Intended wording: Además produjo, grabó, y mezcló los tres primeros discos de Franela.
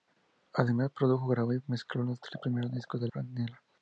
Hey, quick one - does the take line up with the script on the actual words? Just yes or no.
yes